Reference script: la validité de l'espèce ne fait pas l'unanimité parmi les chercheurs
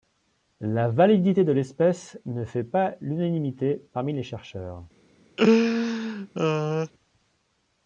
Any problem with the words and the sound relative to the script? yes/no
yes